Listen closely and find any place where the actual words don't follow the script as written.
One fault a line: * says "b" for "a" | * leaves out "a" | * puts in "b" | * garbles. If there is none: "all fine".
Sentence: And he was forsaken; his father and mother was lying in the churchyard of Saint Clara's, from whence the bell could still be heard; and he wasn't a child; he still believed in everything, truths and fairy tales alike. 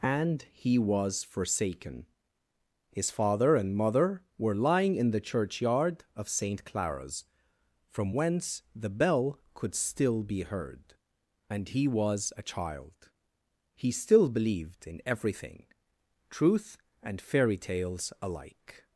* says "were" for "was"
* says "was" for "wasn't"
* says "truth" for "truths"